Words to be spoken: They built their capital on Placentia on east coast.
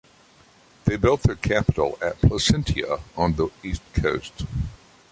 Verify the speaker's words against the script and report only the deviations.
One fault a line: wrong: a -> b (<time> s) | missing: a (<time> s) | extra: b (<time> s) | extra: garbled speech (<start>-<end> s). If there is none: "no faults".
wrong: on -> at (2.0 s)
extra: the (3.4 s)